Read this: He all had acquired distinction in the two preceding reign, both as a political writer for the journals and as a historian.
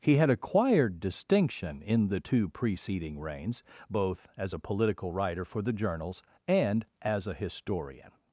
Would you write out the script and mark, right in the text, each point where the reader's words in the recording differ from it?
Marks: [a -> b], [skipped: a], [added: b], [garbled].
He [skipped: all] had acquired distinction in the two preceding [reign, -> reigns] both as a political writer for the journals and as a historian.